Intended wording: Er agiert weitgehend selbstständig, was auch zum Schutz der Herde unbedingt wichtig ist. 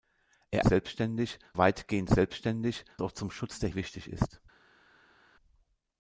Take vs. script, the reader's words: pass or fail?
fail